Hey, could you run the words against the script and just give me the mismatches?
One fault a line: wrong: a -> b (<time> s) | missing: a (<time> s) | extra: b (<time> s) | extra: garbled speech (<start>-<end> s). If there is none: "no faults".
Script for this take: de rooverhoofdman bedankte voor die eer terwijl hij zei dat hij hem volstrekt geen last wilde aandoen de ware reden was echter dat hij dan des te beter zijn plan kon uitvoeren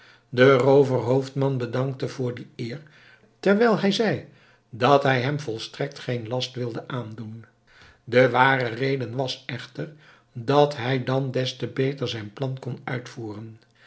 no faults